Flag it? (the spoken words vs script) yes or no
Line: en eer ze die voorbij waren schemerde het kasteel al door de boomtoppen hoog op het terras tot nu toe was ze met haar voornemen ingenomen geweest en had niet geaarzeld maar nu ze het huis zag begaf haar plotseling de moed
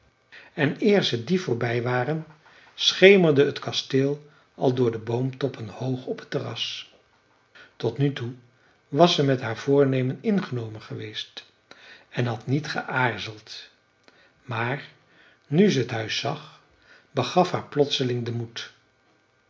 no